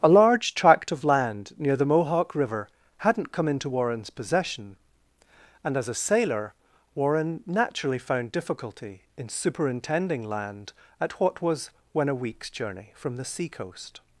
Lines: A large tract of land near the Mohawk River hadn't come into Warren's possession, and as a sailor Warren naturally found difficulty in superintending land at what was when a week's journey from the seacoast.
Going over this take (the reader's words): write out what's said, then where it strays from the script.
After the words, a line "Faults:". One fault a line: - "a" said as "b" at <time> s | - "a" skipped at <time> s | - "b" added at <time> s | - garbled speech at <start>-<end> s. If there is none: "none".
A large tract of land near the Mohawk River hadn't come into Warren's possession, and as a sailor Warren naturally found difficulty in superintending land at what was when a week's journey from the seacoast.
Faults:
none